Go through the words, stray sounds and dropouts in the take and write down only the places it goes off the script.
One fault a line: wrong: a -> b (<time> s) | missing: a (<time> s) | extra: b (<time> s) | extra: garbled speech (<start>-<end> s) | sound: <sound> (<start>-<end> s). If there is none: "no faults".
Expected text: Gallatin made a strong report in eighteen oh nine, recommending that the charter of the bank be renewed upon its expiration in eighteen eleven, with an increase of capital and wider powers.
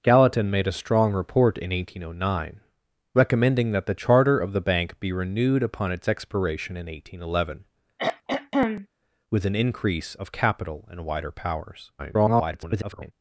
sound: throat clearing (8.0-8.9 s)
extra: garbled speech (12.0-13.1 s)